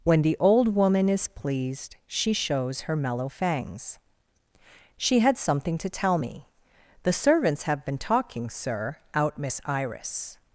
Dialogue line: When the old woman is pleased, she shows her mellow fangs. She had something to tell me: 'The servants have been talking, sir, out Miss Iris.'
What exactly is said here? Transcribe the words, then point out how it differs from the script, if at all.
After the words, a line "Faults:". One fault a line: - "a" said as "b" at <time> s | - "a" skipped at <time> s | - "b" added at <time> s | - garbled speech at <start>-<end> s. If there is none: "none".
When the old woman is pleased, she shows her mellow fangs. She had something to tell me: 'The servants have been talking, sir, out Miss Iris.'
Faults:
none